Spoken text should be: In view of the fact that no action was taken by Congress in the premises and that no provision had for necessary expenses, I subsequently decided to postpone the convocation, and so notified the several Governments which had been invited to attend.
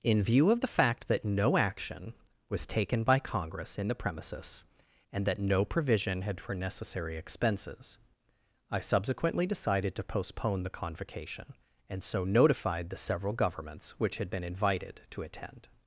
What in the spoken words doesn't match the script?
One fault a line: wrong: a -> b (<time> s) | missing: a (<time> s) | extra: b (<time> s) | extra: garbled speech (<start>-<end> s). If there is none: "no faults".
no faults